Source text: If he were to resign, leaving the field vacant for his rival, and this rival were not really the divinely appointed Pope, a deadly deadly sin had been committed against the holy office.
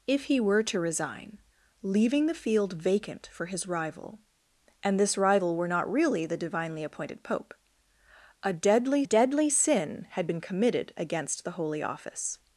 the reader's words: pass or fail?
pass